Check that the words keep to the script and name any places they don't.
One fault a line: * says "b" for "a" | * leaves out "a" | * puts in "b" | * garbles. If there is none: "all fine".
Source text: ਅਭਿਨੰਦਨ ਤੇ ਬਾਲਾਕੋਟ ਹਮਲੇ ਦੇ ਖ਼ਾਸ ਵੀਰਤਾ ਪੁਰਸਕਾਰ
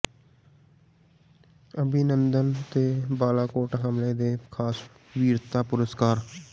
all fine